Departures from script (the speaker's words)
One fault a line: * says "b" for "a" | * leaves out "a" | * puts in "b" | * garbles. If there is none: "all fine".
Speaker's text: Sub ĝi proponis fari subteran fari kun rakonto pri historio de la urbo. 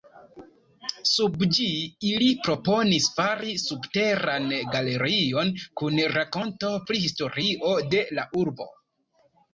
* puts in "ili"
* says "galerion" for "fari"